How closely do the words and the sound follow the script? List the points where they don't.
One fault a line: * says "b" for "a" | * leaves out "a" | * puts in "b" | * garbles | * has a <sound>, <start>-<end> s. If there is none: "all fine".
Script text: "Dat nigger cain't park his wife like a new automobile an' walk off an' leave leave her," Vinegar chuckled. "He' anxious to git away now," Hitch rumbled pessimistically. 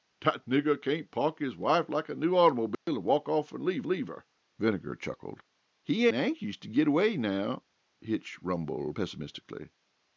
* has a dropout, 2.7-2.9 s